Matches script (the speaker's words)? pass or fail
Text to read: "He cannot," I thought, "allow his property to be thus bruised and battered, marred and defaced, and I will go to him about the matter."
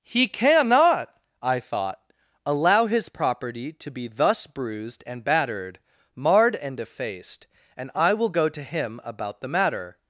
pass